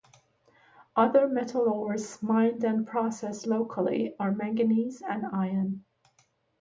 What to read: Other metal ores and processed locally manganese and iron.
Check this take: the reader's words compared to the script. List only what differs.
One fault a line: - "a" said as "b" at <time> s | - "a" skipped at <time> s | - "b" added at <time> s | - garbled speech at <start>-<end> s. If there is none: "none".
- "mined" added at 2.2 s
- "are" added at 4.2 s